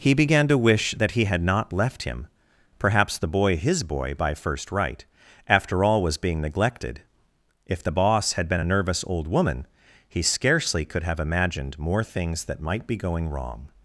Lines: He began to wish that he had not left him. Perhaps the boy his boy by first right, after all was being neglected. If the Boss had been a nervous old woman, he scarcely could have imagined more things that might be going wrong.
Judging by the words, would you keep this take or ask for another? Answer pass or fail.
pass